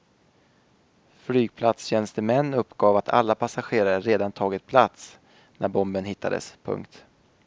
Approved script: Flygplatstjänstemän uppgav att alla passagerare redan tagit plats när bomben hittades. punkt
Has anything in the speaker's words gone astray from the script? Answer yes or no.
no